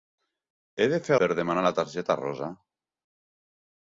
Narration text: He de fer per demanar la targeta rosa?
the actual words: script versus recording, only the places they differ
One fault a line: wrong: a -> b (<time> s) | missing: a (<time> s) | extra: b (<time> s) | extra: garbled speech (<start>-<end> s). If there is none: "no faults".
no faults